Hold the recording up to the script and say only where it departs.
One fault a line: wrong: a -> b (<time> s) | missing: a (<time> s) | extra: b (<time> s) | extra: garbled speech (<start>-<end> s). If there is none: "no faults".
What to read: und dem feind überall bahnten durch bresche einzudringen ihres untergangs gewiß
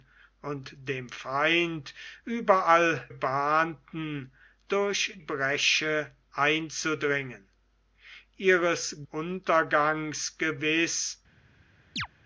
no faults